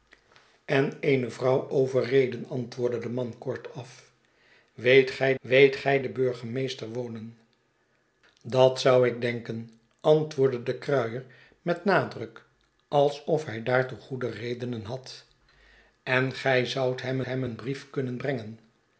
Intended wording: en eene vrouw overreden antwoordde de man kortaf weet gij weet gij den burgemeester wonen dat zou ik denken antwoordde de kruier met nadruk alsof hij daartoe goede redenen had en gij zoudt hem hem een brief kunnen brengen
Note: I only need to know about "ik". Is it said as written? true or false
true